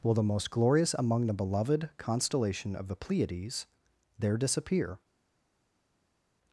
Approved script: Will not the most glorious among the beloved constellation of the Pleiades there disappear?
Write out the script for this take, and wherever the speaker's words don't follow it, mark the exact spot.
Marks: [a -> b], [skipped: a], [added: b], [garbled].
Will [skipped: not] the most glorious among the beloved constellation of the Pleiades there disappear?